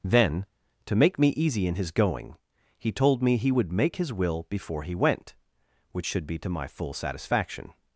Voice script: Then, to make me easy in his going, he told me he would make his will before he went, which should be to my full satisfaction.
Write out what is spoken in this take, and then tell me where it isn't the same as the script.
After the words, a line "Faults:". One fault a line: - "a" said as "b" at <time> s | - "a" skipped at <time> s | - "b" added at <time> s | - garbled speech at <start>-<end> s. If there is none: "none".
Then, to make me easy in his going, he told me he would make his will before he went, which should be to my full satisfaction.
Faults:
none